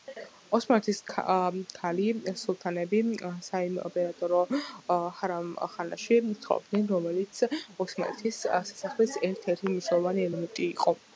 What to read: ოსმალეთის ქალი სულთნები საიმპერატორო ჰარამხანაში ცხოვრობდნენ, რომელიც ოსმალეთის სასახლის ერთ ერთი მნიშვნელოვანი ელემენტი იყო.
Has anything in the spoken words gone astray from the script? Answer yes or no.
no